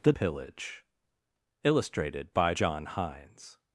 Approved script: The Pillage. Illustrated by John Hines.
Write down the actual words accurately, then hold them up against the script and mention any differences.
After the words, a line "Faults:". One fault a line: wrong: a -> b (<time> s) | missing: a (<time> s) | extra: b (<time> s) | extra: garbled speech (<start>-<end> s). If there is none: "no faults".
The Pillage. Illustrated by John Hines.
Faults:
no faults